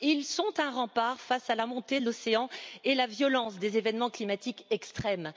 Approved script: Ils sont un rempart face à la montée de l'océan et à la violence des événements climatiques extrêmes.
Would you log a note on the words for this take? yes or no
no